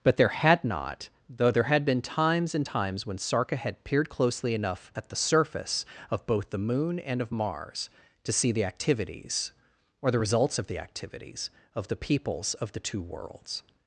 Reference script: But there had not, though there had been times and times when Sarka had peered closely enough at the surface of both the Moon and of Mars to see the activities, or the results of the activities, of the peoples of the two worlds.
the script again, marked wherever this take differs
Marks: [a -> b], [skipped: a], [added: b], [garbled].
But there had not, though there had been times and times when Sarka had peered closely enough at the surface of both the Moon and of Mars to see the activities, or the results of the activities, of the peoples of the two worlds.